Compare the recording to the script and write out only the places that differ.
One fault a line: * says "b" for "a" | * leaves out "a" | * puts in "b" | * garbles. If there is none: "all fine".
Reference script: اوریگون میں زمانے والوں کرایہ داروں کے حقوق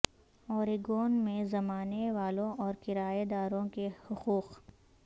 * puts in "اور"